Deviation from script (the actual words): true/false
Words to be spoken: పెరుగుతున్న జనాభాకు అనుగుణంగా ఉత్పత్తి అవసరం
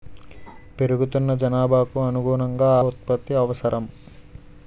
false